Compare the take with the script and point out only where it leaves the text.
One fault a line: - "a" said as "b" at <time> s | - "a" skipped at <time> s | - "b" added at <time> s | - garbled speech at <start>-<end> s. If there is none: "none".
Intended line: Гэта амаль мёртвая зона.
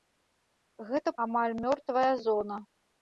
none